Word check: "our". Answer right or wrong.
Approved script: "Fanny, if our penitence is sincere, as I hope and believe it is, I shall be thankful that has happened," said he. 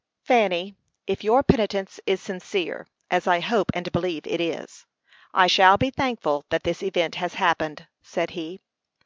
wrong